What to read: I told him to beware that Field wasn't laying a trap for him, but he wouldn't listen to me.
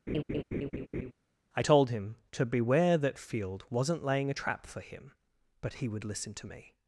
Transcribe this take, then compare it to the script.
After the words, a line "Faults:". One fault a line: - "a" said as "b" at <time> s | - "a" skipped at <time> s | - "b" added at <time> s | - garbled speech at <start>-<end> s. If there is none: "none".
I told him to beware that Field wasn't laying a trap for him, but he would listen to me.
Faults:
- "wouldn't" said as "would" at 5.9 s